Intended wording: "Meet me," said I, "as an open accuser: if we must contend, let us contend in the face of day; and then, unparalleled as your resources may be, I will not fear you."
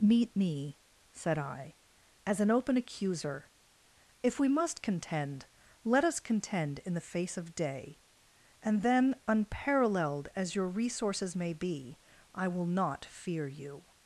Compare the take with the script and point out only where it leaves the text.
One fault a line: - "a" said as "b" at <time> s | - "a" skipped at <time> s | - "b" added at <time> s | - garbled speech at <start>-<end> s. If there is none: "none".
none